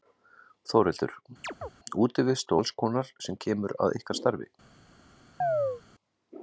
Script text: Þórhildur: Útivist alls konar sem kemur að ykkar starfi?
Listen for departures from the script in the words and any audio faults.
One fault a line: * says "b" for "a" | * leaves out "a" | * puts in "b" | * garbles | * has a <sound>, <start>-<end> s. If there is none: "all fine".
* has a chirp, 1.4-1.7 s
* has a chirp, 5.4-5.8 s